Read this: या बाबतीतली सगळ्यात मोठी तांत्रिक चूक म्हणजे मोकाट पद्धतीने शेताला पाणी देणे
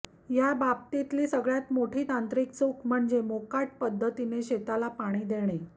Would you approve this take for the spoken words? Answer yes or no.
yes